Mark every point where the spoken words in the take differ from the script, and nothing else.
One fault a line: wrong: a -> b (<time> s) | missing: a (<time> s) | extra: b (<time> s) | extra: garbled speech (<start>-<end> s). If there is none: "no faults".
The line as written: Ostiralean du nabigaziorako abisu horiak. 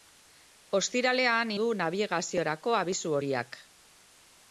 no faults